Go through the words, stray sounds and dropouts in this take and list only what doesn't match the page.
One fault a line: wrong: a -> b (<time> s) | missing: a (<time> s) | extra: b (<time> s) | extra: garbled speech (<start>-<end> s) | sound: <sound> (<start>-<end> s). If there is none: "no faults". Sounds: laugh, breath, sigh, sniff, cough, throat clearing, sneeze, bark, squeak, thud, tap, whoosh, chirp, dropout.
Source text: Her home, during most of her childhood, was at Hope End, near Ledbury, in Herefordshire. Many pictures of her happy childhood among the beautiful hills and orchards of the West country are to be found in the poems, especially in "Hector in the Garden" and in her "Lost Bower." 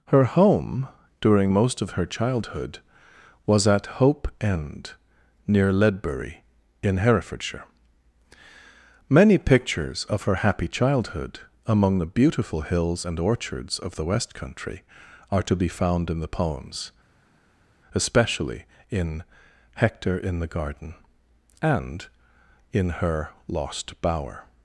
no faults